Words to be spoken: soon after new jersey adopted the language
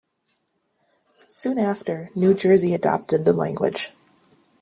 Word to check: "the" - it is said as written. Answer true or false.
true